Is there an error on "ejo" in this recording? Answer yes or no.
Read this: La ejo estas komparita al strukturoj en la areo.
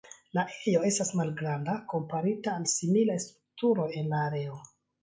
no